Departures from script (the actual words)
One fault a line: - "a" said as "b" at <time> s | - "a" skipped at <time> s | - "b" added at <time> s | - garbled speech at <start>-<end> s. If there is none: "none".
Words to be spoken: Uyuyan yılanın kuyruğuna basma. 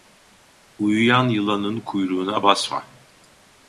none